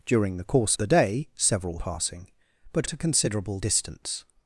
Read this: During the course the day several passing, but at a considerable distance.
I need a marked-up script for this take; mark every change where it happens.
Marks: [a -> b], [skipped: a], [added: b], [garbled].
During the course the day several passing, but at a considerable distance.